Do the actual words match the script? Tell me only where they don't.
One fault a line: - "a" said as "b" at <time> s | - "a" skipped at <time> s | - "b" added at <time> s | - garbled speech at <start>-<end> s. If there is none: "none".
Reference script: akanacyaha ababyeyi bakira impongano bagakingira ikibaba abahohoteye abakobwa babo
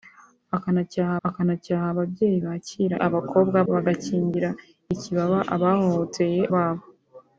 - "akanacyaha" added at 1.3 s
- "impongano" said as "abakobwa" at 3.1 s
- "abakobwa" skipped at 6.4 s